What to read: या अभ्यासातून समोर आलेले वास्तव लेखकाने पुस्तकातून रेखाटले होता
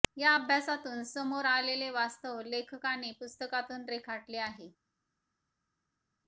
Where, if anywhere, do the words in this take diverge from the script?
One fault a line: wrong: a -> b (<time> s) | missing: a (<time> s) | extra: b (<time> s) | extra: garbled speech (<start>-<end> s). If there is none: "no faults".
wrong: होता -> आहे (4.4 s)